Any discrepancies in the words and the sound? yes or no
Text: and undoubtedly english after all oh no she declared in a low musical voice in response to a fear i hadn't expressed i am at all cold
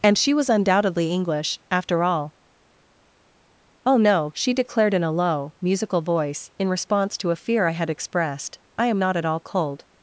yes